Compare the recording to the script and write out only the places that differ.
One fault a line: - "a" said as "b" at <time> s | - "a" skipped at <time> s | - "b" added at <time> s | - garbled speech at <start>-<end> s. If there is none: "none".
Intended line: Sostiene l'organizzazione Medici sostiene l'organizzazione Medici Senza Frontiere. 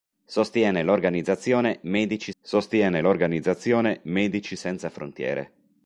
none